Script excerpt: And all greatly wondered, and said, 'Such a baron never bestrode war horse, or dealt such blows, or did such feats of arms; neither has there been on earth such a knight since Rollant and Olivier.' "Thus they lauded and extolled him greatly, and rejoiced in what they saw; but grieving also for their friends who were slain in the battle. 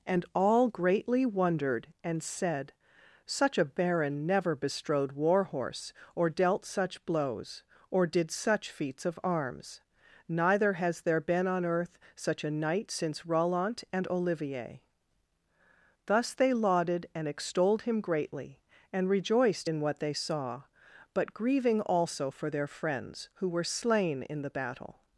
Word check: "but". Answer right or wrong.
right